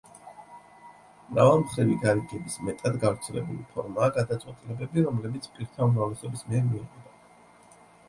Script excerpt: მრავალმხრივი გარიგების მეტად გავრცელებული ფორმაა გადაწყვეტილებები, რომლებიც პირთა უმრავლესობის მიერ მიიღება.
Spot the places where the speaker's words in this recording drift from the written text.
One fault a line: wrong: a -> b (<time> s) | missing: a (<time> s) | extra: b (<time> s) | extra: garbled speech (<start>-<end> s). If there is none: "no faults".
no faults